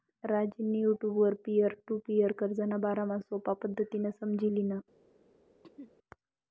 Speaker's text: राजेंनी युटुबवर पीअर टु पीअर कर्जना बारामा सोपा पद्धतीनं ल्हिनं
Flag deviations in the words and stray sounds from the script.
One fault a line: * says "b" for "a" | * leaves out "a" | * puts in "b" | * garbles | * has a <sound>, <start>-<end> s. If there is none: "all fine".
* puts in "समझी"
* has a throat clearing, 5.6-5.9 s